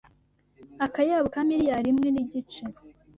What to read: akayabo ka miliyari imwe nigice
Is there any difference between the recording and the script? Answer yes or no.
no